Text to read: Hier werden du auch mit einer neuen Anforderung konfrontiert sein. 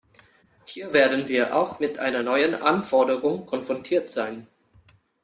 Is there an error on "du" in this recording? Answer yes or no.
yes